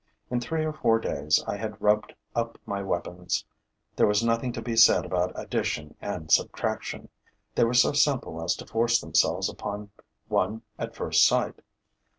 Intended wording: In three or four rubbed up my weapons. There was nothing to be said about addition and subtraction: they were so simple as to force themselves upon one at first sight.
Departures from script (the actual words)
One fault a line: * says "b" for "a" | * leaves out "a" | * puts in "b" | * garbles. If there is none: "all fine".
* puts in "days I had"